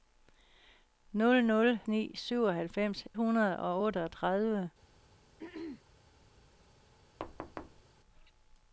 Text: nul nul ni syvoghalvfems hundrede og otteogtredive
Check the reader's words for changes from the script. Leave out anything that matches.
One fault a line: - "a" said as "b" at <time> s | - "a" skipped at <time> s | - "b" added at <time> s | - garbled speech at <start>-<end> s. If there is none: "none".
none